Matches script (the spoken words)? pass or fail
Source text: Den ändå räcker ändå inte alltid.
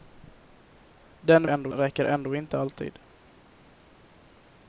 pass